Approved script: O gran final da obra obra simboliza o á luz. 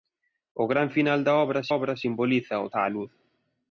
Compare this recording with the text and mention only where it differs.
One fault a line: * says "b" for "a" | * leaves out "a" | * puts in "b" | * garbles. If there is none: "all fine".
all fine